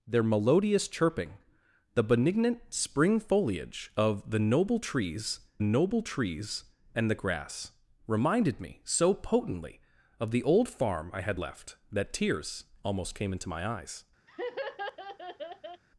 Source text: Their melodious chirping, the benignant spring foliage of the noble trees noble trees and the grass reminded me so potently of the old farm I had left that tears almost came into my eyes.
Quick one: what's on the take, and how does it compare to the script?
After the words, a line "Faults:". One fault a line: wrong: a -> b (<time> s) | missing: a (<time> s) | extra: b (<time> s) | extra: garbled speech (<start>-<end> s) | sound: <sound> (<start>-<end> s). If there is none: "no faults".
Their melodious chirping, the benignant spring foliage of the noble trees noble trees and the grass reminded me so potently of the old farm I had left that tears almost came into my eyes.
Faults:
sound: laugh (14.3-15.8 s)